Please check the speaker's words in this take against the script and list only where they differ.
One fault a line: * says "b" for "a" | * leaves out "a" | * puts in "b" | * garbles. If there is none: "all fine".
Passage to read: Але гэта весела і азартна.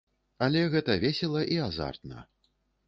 all fine